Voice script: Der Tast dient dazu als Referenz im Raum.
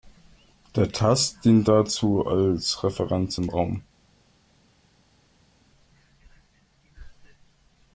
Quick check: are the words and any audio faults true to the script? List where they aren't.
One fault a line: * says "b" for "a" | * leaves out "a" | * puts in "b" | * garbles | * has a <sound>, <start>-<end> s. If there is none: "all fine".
all fine